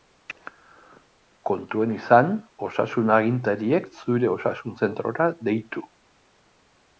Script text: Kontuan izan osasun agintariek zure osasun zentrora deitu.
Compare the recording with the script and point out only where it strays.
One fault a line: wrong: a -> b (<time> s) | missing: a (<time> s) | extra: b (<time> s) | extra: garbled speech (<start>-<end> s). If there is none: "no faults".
no faults